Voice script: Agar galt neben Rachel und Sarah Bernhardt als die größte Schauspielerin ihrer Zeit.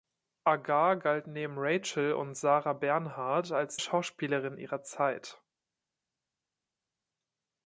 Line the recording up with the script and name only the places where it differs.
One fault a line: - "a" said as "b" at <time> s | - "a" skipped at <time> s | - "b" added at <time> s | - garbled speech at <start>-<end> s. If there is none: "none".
- "die größte" skipped at 3.8 s